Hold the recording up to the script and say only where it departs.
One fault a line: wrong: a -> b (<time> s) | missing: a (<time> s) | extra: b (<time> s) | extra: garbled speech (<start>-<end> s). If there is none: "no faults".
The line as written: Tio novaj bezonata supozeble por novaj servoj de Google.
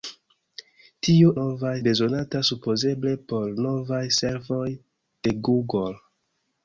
no faults